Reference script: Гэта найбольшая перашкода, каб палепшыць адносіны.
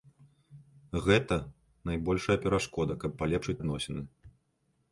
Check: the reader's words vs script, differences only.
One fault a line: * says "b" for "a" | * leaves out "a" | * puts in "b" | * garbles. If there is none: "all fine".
all fine